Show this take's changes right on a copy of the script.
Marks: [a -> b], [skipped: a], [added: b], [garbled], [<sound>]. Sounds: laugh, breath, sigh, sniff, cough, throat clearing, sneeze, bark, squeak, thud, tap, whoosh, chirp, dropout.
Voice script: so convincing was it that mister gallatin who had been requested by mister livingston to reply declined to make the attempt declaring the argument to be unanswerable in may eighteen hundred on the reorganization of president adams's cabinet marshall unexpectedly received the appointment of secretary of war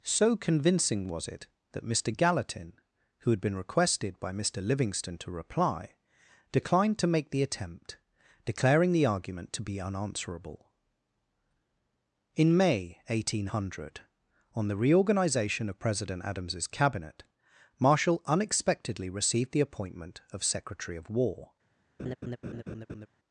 so convincing was it that mister gallatin who had been requested by mister livingston to reply declined to make the attempt declaring the argument to be unanswerable in may eighteen hundred on the reorganization of president adams's cabinet marshall unexpectedly received the appointment of secretary of war [laugh]